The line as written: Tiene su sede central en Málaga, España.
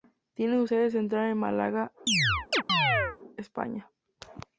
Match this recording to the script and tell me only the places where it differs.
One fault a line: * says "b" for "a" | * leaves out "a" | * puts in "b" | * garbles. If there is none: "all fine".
all fine